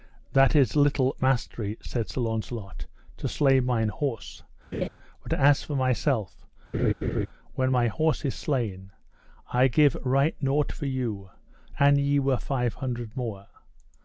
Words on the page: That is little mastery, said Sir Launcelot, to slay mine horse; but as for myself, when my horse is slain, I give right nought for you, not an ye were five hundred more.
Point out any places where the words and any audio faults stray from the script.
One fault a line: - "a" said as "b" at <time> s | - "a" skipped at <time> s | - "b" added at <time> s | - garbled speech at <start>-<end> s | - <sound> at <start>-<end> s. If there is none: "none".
- laugh at 4.7-4.9 s
- laugh at 6.7-7.3 s
- "not" skipped at 11.3 s